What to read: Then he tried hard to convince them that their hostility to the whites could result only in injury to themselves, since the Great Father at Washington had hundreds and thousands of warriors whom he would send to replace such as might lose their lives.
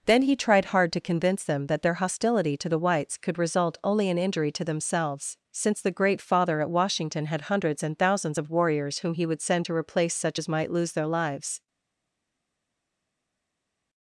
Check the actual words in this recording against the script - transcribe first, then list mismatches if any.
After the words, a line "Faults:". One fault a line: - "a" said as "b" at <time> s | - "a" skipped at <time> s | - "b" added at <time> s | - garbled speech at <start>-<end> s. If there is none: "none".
Then he tried hard to convince them that their hostility to the whites could result only in injury to themselves, since the Great Father at Washington had hundreds and thousands of warriors whom he would send to replace such as might lose their lives.
Faults:
none